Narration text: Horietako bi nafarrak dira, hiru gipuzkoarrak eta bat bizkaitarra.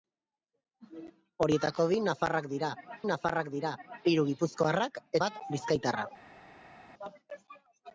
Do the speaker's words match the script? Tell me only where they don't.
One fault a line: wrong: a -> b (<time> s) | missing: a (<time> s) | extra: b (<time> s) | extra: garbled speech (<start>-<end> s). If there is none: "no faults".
extra: nafarrak dira (3.1 s)
missing: eta (5.0 s)